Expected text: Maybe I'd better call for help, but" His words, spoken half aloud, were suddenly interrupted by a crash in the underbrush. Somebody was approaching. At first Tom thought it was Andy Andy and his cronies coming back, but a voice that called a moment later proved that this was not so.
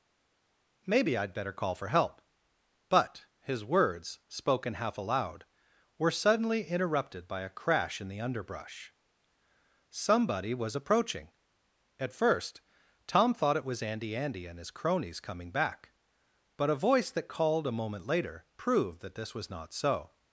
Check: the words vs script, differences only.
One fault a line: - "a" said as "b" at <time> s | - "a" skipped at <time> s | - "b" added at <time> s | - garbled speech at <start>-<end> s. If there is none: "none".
none